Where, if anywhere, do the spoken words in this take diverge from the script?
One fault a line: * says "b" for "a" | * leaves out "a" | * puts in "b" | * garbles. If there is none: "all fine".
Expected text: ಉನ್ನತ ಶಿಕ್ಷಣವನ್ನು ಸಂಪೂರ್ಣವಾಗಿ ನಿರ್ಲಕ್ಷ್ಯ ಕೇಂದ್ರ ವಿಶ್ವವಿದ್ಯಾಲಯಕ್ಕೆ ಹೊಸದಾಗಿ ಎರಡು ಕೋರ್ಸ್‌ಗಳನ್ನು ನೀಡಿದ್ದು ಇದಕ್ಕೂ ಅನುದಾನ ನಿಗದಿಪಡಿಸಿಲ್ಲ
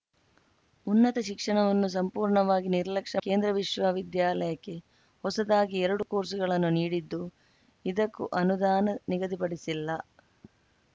all fine